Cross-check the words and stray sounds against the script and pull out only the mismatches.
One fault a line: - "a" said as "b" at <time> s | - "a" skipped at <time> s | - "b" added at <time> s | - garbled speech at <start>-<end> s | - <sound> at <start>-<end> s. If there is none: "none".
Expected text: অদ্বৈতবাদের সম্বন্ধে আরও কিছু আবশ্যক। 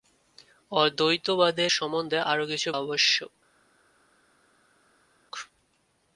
none